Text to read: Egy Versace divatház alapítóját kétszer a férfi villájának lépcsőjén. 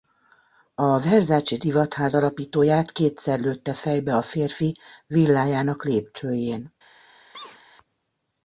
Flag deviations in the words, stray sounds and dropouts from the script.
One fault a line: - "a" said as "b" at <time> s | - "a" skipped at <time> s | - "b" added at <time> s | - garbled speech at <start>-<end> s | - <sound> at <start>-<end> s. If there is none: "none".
- "Egy" said as "A" at 0.8 s
- "lőtte fejbe" added at 3.4 s
- sneeze at 7.3-7.6 s